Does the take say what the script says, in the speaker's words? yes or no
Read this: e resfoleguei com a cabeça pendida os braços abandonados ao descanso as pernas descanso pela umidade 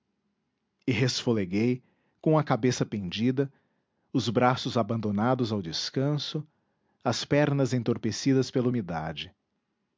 no